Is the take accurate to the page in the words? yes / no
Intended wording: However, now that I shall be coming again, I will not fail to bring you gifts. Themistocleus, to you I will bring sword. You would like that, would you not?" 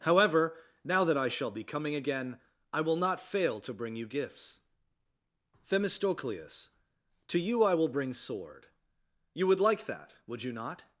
yes